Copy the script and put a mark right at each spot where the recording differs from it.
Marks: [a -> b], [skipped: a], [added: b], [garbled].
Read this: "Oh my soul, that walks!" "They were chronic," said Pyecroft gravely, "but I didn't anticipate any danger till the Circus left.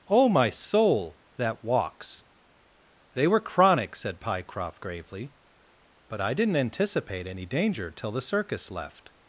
"Oh my soul, that walks!" "They were chronic," said Pyecroft gravely, "but I didn't anticipate any danger till the Circus left.